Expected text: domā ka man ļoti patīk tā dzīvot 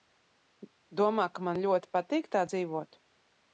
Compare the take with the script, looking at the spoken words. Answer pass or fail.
pass